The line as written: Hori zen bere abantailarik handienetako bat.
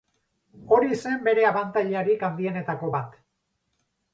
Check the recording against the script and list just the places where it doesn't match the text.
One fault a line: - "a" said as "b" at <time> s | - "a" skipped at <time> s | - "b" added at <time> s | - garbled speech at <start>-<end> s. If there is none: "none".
none